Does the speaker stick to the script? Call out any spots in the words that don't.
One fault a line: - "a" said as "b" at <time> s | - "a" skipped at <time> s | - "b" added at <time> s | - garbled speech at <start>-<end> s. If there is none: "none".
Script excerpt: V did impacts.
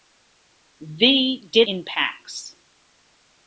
none